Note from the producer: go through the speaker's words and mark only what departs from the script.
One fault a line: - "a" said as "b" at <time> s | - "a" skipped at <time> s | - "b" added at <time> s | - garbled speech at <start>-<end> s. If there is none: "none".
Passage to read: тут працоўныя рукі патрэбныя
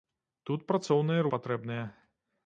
- "рукі" skipped at 1.3 s